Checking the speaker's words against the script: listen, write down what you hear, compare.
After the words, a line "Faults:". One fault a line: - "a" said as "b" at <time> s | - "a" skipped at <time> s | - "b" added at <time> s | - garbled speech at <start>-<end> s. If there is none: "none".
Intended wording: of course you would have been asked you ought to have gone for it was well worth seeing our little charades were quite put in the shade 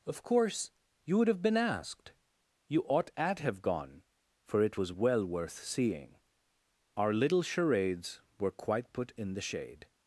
of course you would have been asked you ought at have gone for it was well worth seeing our little charades were quite put in the shade
Faults:
- "to" said as "at" at 3.1 s